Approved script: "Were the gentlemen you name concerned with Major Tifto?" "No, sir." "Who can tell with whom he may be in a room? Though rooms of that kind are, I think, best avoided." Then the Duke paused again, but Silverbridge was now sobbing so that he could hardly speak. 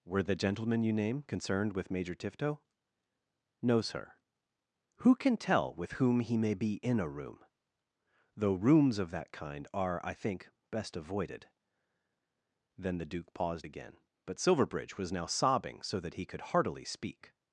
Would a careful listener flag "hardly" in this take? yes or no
yes